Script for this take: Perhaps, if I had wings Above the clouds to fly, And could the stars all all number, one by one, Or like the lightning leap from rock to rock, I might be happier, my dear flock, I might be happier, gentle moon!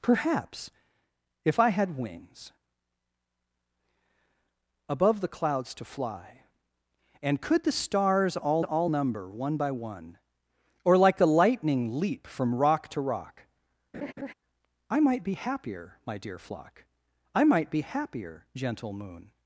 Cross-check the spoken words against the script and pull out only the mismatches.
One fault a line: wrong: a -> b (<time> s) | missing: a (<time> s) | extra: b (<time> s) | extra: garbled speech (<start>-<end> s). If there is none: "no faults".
no faults